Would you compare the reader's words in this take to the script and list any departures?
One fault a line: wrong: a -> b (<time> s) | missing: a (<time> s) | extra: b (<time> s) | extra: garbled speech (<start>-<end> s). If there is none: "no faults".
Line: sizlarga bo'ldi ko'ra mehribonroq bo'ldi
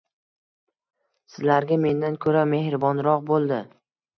wrong: bo'ldi -> mendan (1.8 s)